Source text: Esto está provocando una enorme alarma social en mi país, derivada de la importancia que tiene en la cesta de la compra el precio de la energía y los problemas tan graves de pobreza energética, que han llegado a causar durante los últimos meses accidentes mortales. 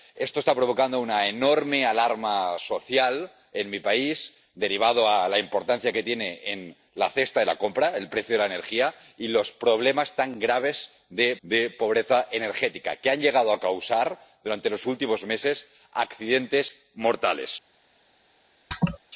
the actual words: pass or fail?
fail